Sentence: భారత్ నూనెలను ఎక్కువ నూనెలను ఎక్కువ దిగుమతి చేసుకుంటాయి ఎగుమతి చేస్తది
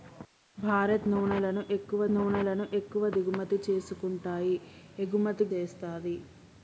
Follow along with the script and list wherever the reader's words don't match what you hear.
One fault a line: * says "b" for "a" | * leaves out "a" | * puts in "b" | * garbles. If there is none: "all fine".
all fine